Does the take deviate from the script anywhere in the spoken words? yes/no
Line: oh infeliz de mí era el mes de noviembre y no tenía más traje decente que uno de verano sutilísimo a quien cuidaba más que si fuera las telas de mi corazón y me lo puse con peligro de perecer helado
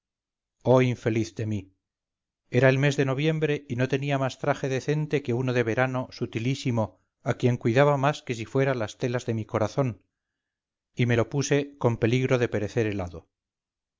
no